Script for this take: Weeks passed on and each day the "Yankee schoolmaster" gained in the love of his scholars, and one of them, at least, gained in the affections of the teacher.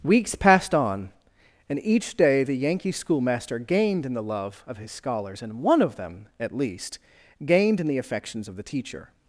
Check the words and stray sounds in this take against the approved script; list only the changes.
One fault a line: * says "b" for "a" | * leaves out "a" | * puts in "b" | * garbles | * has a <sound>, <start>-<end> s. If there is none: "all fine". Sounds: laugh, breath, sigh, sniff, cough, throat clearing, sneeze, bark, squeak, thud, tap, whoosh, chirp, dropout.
all fine